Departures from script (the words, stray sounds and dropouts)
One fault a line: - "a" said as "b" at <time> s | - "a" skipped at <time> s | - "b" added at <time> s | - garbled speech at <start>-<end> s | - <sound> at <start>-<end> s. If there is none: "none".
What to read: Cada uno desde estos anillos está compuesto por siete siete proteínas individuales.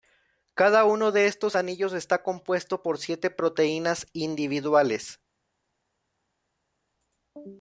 - "desde" said as "de" at 1.1 s
- "siete" skipped at 3.3 s